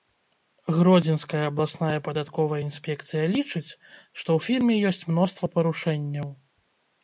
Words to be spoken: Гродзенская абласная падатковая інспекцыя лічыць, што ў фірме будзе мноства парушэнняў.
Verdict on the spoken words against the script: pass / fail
fail